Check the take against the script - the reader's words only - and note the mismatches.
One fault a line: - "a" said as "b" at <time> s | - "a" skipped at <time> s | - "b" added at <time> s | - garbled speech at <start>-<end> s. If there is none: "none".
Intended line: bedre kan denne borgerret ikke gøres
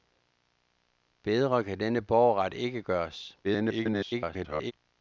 - garbled speech at 3.4-4.7 s